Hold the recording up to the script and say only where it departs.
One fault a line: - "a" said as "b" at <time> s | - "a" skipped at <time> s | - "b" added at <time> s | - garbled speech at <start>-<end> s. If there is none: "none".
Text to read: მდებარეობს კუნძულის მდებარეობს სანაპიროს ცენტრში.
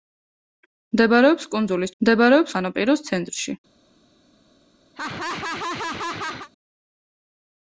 none